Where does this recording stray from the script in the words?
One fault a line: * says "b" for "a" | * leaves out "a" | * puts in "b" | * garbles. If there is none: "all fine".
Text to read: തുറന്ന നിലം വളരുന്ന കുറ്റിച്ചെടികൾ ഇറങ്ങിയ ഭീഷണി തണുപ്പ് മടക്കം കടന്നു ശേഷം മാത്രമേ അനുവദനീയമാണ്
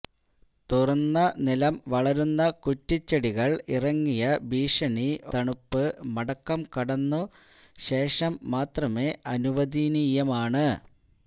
all fine